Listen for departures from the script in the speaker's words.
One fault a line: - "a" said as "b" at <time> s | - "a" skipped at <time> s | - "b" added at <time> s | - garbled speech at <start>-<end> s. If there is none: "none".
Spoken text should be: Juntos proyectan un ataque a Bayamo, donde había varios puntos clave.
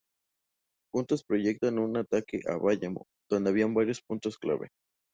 none